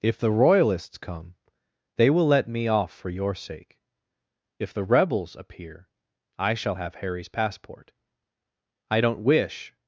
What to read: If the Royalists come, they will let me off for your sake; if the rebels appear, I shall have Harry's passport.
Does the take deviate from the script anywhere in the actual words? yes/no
yes